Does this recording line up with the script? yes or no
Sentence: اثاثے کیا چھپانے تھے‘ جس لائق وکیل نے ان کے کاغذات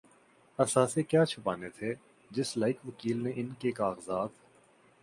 yes